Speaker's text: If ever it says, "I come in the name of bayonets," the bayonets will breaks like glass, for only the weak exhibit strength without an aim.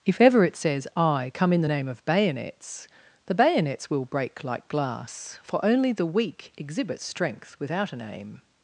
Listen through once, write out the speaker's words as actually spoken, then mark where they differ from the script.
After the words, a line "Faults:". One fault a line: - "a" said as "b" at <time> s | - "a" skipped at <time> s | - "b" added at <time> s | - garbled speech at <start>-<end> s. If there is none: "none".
If ever it says, "I come in the name of bayonets," the bayonets will break like glass, for only the weak exhibit strength without an aim.
Faults:
- "breaks" said as "break" at 4.1 s